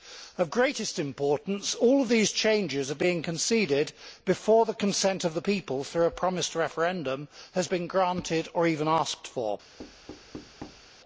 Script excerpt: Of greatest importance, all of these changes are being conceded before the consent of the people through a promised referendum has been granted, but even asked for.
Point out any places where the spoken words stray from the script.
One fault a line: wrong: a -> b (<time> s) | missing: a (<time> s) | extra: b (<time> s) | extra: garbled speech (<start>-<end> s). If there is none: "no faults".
wrong: but -> or (8.5 s)